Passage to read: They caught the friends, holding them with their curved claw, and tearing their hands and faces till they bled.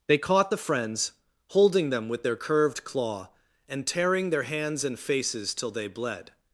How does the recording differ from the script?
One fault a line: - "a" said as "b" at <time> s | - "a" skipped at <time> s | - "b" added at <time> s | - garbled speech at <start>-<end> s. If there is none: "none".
none